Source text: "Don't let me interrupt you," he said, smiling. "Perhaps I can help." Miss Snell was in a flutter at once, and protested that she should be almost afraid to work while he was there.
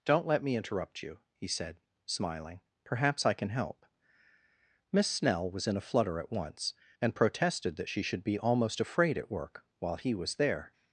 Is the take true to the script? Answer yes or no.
no